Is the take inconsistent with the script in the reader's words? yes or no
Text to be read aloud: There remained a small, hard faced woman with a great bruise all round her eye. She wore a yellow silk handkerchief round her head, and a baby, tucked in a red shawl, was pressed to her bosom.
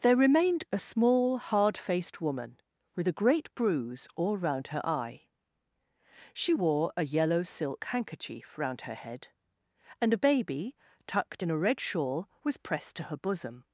no